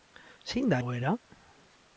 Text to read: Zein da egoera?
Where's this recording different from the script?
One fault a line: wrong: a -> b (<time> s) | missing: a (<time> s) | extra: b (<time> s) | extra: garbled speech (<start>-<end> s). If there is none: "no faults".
no faults